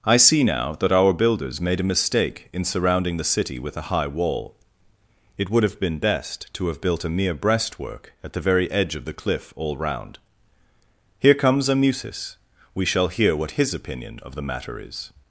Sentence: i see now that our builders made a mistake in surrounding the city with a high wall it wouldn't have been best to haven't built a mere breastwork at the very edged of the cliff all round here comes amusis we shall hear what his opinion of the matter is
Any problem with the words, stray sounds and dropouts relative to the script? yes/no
yes